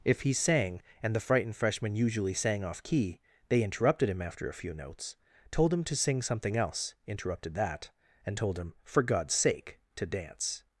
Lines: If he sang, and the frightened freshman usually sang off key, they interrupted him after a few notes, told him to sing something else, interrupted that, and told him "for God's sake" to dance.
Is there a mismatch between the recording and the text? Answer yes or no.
no